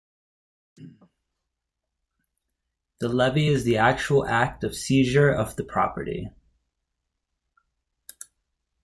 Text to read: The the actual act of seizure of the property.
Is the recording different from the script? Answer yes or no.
yes